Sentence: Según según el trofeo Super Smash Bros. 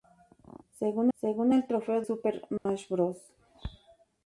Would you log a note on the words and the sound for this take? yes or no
yes